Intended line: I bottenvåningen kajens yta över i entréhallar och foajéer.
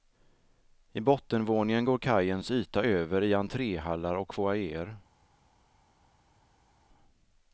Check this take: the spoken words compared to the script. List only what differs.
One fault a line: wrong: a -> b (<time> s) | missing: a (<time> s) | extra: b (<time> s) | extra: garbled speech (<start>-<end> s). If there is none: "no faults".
extra: går (1.8 s)